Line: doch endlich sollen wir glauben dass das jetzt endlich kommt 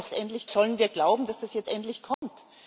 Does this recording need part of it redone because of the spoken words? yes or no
no